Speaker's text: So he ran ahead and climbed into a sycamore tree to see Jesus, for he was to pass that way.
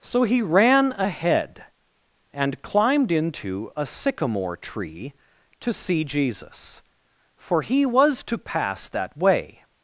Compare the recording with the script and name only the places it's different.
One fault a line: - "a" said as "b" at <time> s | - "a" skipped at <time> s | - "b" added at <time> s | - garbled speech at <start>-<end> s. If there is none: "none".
none